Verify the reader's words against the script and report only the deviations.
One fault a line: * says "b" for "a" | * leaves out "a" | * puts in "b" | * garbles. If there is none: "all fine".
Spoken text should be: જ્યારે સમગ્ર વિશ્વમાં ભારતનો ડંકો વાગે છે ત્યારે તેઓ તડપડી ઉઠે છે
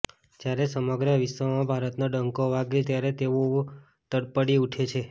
* leaves out "છે"